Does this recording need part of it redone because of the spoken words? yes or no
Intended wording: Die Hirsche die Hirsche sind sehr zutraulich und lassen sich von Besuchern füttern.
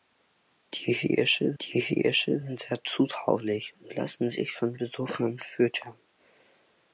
no